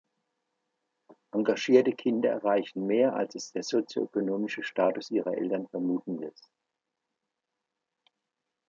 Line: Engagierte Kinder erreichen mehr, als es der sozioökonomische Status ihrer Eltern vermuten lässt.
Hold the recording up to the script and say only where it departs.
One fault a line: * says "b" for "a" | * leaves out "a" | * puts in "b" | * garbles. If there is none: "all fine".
all fine